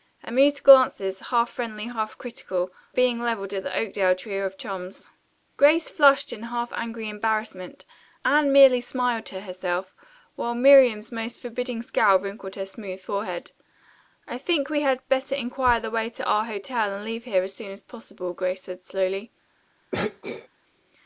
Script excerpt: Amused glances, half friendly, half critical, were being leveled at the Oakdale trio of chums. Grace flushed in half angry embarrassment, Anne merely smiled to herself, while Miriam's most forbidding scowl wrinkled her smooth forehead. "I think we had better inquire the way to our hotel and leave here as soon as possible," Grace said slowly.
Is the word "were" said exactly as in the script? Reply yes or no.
no